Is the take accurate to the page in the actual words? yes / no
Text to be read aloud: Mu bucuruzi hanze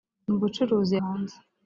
yes